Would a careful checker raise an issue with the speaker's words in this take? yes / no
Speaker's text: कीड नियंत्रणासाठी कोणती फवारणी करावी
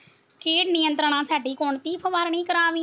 no